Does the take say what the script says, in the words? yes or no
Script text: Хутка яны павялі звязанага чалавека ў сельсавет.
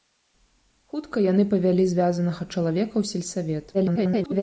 no